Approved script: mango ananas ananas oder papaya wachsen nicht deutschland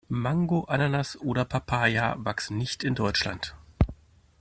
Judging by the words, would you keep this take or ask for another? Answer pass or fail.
fail